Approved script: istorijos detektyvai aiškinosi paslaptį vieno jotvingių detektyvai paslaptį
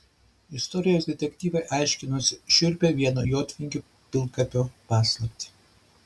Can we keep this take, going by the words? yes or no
no